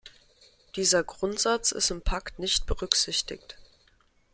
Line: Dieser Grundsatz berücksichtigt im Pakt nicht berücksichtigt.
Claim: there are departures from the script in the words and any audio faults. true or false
true